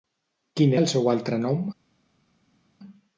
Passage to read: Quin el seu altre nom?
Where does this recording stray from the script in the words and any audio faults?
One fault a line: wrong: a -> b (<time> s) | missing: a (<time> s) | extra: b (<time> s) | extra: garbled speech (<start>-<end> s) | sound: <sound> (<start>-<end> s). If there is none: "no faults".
no faults